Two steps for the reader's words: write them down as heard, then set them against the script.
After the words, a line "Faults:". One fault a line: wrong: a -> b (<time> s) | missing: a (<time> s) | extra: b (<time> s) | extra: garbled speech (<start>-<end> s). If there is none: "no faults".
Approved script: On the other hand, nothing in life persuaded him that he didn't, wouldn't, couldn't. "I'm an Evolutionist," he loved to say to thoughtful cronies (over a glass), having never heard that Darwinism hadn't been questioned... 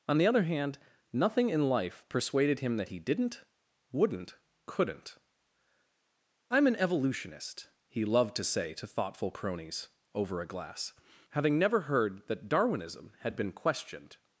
On the other hand, nothing in life persuaded him that he didn't, wouldn't, couldn't. "I'm an Evolutionist," he loved to say to thoughtful cronies (over a glass), having never heard that Darwinism had been questioned...
Faults:
wrong: hadn't -> had (13.2 s)